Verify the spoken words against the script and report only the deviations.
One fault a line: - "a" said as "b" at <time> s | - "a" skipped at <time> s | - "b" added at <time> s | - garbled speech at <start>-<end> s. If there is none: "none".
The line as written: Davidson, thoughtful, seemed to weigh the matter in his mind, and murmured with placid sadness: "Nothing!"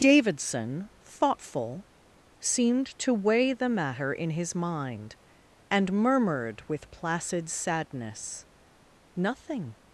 none